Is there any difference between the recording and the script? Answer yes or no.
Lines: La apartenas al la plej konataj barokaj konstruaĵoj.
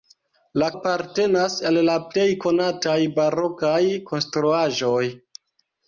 no